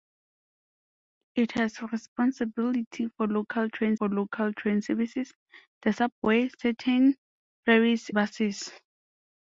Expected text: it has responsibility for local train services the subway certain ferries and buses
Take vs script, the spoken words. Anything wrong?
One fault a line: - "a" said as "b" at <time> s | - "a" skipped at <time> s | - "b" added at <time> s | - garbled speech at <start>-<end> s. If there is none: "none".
- "for local train" added at 4.0 s
- "and" skipped at 8.1 s